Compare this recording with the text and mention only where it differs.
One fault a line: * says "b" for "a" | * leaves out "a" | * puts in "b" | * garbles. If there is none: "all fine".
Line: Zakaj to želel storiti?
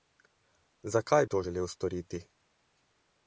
all fine